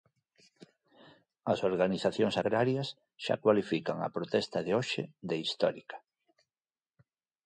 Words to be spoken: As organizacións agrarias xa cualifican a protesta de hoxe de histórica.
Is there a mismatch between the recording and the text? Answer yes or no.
no